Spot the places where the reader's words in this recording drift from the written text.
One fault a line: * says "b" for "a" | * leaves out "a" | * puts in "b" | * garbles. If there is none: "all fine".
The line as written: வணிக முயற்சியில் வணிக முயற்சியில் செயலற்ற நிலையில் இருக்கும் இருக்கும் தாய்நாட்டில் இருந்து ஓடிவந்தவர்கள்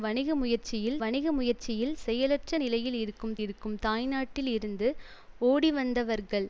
all fine